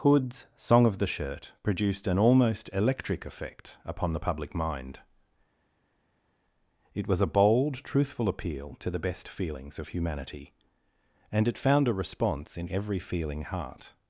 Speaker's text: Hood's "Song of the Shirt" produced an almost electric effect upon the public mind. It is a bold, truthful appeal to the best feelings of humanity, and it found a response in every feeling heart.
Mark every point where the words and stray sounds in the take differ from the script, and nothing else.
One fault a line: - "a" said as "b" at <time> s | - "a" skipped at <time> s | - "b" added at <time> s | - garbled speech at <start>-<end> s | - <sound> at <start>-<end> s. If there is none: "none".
- "is" said as "was" at 7.1 s